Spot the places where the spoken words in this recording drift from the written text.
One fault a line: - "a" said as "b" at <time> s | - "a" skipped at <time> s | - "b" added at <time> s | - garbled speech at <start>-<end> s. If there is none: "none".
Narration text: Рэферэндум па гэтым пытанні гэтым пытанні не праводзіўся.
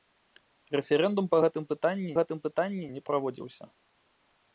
none